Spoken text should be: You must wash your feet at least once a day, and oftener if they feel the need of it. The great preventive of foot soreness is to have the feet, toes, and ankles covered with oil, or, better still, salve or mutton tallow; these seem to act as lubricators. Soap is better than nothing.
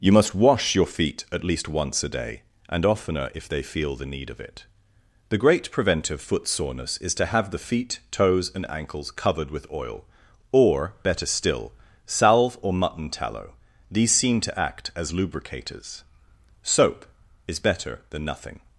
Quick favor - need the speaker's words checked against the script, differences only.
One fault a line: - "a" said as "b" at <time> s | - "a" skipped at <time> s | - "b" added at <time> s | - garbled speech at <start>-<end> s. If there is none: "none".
- "of" skipped at 6.2 s